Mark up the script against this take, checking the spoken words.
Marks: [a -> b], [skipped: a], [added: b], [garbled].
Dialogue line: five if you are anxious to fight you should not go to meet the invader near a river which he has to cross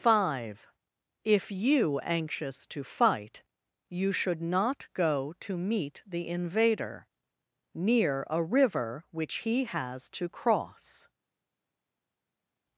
five if you [skipped: are] anxious to fight you should not go to meet the invader near a river which he has to cross